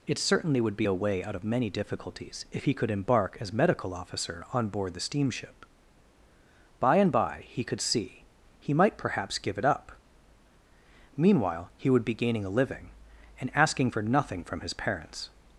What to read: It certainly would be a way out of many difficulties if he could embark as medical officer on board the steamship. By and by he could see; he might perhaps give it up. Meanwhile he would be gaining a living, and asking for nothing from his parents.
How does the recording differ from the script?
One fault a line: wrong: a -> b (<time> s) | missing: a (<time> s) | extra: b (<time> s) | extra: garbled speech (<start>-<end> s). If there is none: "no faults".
no faults